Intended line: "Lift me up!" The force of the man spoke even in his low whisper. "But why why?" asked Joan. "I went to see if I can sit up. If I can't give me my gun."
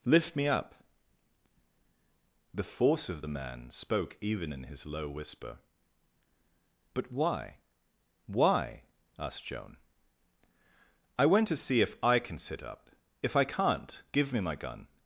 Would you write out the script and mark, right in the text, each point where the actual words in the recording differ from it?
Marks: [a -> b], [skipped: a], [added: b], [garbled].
"Lift me up!" The force of the man spoke even in his low whisper. "But why why?" asked Joan. "I went to see if I can sit up. If I can't give me my gun."